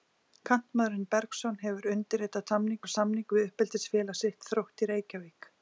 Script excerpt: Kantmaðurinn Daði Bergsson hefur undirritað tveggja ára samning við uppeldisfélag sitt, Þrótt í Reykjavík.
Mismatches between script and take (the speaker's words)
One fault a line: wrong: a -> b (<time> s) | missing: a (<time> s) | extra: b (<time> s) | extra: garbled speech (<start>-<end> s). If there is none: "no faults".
missing: Daði (1.0 s)
wrong: tveggja -> samning (2.5 s)